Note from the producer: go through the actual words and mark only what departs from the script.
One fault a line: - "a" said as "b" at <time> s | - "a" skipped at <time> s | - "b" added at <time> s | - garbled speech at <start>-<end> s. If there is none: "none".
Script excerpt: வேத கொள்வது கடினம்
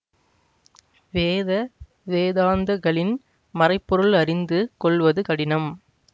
- "வேதாந்தகளின் மறைபொருள் அறிந்து" added at 2.1 s